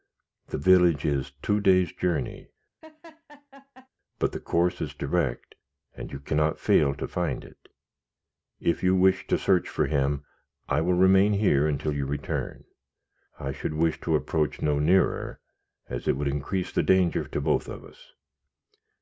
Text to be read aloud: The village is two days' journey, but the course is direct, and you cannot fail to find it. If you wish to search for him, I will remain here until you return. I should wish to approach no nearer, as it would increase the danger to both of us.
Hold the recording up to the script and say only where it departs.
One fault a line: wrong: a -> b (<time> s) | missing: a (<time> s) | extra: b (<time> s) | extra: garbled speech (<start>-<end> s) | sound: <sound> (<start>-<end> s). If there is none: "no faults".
sound: laugh (2.8-3.9 s)